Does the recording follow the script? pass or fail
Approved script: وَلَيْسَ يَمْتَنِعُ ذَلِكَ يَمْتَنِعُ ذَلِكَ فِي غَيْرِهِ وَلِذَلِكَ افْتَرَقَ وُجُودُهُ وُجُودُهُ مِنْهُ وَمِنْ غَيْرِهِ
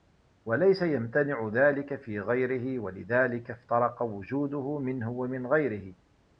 fail